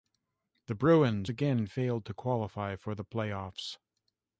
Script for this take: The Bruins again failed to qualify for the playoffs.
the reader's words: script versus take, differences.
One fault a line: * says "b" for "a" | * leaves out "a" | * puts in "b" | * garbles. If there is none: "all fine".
all fine